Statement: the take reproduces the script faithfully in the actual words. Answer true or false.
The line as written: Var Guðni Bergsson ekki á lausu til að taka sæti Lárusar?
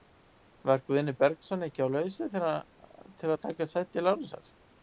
true